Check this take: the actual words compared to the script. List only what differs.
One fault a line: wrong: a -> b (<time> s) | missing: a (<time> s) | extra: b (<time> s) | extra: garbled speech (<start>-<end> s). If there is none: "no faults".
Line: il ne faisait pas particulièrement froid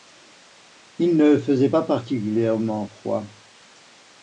no faults